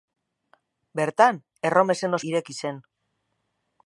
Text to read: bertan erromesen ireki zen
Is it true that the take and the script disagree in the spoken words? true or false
false